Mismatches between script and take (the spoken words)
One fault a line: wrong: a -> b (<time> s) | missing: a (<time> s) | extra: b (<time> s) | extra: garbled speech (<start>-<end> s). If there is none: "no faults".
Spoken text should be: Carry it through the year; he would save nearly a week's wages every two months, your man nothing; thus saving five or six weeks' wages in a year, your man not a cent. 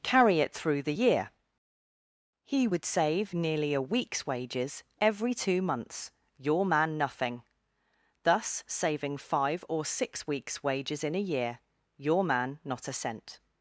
no faults